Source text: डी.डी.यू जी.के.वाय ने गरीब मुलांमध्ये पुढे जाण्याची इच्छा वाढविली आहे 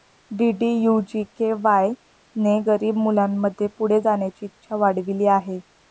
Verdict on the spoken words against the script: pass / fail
pass